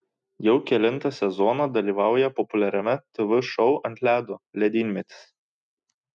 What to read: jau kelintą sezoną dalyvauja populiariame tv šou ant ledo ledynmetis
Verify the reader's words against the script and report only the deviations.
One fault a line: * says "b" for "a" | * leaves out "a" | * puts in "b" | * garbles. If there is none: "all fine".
all fine